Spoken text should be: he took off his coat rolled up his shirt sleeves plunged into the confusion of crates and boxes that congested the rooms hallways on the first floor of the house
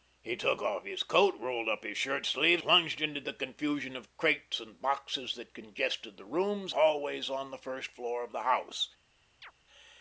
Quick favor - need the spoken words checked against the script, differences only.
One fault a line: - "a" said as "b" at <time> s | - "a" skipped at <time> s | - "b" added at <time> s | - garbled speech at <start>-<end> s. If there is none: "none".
none